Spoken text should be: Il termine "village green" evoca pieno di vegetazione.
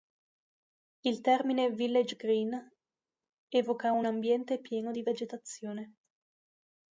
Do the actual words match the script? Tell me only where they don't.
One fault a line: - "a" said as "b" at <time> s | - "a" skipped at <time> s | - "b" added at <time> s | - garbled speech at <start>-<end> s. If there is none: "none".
- "un ambiente" added at 3.9 s